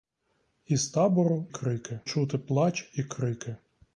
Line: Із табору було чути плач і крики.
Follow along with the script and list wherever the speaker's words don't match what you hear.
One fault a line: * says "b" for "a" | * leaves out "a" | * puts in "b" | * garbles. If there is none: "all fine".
* says "крики" for "було"